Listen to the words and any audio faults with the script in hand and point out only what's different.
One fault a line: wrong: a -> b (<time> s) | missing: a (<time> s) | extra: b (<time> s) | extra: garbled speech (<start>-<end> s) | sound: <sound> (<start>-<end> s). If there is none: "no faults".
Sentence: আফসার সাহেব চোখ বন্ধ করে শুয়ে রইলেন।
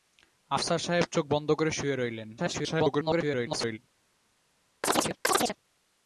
extra: garbled speech (2.4-3.8 s)
sound: chirp (4.8-5.6 s)